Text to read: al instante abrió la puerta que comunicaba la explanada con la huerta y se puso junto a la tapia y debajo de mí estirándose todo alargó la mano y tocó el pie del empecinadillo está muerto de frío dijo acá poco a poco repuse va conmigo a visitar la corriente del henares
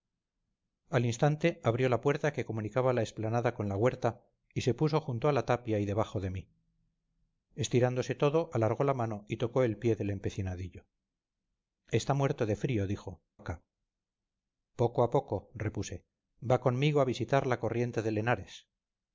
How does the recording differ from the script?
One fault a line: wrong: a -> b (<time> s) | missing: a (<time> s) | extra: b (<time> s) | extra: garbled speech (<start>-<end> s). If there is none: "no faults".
no faults